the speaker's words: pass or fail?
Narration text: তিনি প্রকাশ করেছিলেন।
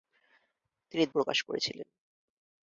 pass